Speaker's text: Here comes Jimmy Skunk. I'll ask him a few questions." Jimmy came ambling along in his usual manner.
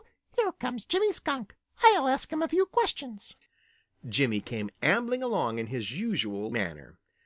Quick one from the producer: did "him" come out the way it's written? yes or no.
yes